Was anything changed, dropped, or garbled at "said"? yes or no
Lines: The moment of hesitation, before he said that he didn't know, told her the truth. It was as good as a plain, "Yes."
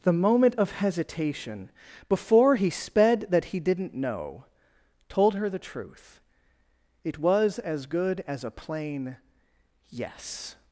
yes